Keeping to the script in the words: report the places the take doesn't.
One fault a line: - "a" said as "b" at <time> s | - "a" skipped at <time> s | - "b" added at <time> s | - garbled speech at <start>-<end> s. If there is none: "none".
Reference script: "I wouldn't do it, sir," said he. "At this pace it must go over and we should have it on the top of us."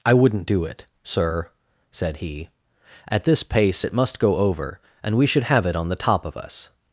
none